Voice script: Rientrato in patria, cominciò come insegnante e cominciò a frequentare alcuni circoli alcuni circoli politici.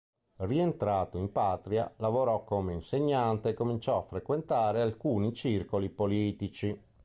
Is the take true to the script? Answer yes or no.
no